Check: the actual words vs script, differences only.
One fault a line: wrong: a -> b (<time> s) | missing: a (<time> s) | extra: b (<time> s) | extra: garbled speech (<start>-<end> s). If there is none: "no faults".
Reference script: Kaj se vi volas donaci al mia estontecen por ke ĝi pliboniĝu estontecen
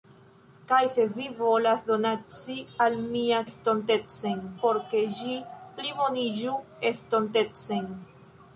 no faults